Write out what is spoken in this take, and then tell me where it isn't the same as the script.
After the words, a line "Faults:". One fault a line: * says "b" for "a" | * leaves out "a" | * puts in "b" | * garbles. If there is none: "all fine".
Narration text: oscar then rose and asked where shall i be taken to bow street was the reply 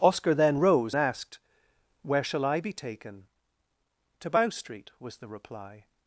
oscar then rose asked where shall i be taken to bow street was the reply
Faults:
* leaves out "and"